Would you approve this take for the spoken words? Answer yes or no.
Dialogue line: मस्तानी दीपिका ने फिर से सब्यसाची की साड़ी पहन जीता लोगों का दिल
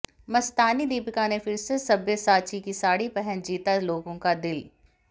yes